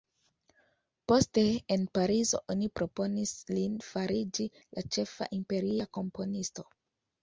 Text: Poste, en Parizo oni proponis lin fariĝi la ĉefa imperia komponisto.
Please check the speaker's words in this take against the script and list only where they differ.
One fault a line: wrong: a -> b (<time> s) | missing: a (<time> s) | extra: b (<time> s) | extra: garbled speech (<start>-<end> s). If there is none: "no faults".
no faults